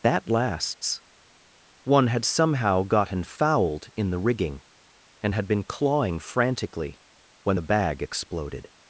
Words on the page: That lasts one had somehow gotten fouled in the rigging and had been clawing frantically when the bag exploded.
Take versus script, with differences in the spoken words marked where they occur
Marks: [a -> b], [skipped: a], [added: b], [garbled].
That lasts one had somehow gotten fouled in the rigging and had been clawing frantically when the bag exploded.